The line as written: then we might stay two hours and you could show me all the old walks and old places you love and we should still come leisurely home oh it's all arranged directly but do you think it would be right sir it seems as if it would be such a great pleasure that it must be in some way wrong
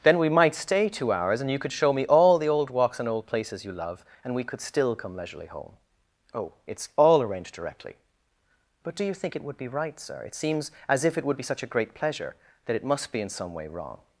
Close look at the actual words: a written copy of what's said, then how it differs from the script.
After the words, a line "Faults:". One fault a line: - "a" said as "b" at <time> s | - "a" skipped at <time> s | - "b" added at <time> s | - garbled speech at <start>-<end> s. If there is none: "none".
then we might stay two hours and you could show me all the old walks and old places you love and we could still come leisurely home oh it's all arranged directly but do you think it would be right sir it seems as if it would be such a great pleasure that it must be in some way wrong
Faults:
- "should" said as "could" at 4.4 s